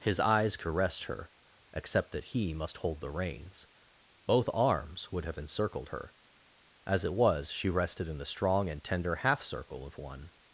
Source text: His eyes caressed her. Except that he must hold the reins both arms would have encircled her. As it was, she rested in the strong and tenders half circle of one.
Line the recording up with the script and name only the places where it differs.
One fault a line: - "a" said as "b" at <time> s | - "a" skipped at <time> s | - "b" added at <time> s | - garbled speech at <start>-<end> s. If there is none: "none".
- "tenders" said as "tender" at 8.8 s